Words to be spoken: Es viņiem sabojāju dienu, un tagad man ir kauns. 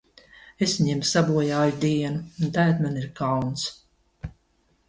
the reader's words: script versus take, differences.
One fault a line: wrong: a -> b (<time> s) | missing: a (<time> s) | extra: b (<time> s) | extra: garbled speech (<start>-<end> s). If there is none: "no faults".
no faults